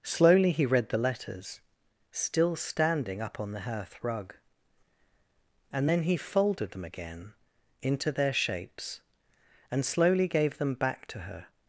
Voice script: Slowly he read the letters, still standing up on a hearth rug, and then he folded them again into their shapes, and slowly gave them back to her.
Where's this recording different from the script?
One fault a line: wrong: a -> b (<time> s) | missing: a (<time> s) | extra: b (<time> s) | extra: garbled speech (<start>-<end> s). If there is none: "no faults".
wrong: a -> the (3.5 s)